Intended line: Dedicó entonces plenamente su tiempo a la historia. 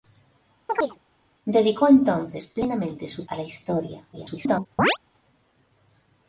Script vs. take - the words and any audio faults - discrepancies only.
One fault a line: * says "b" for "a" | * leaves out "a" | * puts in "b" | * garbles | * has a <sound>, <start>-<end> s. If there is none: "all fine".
* has a chirp, 0.7-1.0 s
* leaves out "tiempo"
* garbles
* has a chirp, 4.8-5.0 s